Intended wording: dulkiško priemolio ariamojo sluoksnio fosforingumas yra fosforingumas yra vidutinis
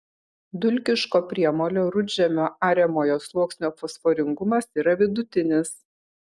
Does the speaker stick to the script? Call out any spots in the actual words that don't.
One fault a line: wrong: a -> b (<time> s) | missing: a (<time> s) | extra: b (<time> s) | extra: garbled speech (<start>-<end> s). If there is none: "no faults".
extra: rudžemio (2.0 s)
missing: fosforingumas yra (5.0 s)